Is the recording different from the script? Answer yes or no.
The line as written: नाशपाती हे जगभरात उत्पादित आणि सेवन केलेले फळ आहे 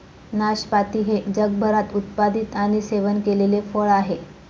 no